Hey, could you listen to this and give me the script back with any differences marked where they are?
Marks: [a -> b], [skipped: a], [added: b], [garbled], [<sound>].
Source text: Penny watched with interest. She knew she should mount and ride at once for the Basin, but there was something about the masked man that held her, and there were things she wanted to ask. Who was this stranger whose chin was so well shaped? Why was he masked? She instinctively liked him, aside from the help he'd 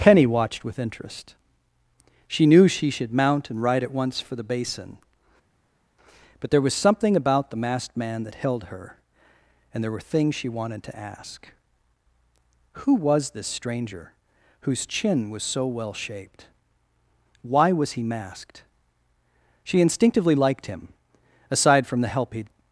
Penny watched with interest. She knew she should mount and ride at once for the Basin, but there was something about the masked man that held her, and there were things she wanted to ask. Who was this stranger whose chin was so well shaped? Why was he masked? She instinctively liked him, aside from the help he'd